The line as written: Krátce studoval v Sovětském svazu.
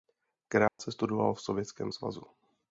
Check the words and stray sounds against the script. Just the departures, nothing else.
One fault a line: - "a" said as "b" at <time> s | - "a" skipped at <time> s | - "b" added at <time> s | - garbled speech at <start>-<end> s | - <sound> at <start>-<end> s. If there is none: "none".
- dropout at 0.7-0.8 s